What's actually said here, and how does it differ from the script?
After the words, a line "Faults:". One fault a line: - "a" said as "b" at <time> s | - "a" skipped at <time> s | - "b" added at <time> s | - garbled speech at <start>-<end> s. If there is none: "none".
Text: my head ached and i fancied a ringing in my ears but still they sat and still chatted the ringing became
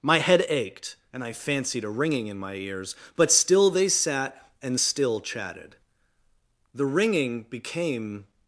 my head ached and i fancied a ringing in my ears but still they sat and still chatted the ringing became
Faults:
none